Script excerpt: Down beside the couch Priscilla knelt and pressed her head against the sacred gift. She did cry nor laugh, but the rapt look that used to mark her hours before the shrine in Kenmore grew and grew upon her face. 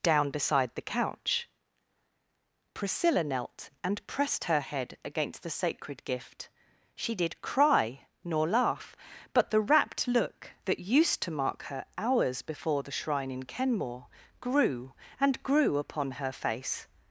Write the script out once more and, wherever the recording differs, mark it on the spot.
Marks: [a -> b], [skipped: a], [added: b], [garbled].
Down beside the couch Priscilla knelt and pressed her head against the sacred gift. She did cry nor laugh, but the rapt look that used to mark her hours before the shrine in Kenmore grew and grew upon her face.